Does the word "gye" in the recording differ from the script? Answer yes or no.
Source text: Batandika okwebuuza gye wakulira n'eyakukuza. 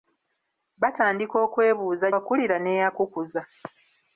yes